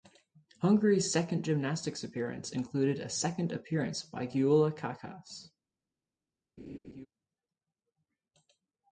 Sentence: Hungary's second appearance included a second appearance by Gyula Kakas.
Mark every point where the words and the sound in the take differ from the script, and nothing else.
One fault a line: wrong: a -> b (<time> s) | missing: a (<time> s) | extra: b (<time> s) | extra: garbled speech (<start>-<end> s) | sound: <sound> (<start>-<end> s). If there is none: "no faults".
extra: gymnastics (1.4 s)
sound: laugh (6.6-7.1 s)